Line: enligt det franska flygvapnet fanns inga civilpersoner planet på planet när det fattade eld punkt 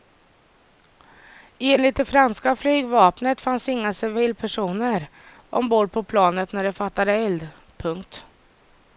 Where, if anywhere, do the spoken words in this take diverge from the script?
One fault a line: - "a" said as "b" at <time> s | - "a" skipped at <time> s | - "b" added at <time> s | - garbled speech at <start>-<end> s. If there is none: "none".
- "planet" said as "ombord" at 5.5 s